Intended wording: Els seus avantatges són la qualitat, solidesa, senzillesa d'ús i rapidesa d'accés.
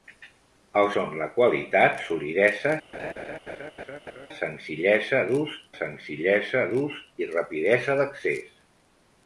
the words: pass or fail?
fail